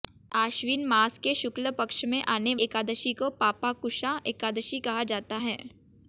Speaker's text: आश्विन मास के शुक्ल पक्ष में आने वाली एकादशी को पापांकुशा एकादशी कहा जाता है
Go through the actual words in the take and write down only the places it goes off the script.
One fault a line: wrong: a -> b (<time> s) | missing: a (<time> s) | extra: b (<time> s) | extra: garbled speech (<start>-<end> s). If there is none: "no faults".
missing: वाली (2.5 s)